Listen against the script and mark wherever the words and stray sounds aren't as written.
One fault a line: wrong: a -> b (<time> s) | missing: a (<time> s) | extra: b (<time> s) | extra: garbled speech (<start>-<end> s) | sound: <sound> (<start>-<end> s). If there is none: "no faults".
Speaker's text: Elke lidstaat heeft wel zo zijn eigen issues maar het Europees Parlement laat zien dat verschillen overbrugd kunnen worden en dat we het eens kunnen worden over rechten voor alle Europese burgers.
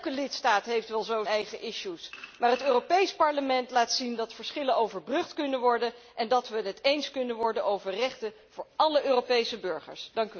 missing: zijn (1.2 s)